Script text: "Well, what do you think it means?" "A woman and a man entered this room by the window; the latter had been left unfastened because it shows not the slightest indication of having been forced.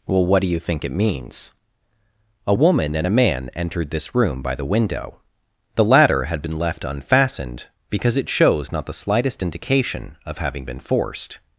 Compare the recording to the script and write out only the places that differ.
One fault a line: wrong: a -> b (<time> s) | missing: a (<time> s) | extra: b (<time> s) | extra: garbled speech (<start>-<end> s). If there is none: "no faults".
no faults